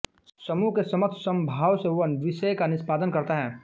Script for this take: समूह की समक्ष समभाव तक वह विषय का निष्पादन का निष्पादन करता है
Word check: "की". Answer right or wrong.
wrong